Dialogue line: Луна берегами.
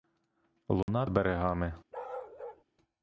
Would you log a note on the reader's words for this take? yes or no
no